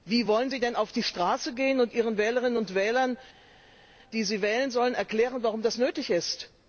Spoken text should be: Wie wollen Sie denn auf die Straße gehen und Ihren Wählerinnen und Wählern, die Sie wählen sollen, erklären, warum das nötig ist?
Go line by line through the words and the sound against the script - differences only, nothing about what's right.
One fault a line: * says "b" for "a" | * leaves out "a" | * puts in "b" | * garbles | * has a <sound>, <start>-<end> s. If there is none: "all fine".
all fine